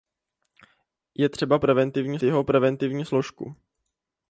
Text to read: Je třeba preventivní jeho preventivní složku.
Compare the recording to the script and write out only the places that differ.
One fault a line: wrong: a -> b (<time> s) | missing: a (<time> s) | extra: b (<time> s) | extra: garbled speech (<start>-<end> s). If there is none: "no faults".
no faults